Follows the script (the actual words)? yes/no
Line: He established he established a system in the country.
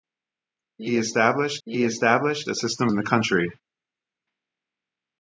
yes